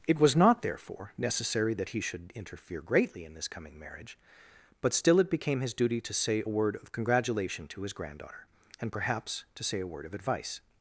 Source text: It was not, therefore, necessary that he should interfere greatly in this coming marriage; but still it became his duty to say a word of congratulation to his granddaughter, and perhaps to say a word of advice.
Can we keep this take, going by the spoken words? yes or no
yes